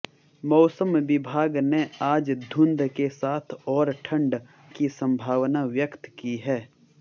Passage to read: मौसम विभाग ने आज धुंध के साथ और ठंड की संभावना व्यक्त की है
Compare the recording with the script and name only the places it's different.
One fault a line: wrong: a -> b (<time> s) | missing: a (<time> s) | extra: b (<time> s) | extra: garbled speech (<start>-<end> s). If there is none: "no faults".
no faults